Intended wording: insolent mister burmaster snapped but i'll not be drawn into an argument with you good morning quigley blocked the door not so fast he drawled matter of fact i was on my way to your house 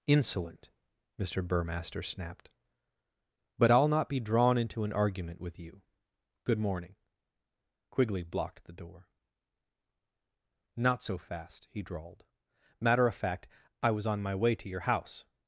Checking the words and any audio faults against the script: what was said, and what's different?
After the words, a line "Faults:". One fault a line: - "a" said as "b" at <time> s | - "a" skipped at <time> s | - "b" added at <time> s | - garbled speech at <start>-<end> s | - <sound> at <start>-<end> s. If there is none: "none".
insolent mister burmaster snapped but i'll not be drawn into an argument with you good morning quigley blocked the door not so fast he drawled matter of fact i was on my way to your house
Faults:
none